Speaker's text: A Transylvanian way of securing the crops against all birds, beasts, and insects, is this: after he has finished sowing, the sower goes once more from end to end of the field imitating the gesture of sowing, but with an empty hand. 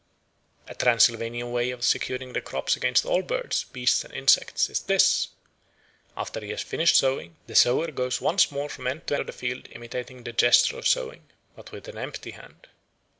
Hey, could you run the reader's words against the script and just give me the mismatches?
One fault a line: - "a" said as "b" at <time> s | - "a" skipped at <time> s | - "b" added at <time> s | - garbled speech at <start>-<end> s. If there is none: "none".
- "end" skipped at 9.2 s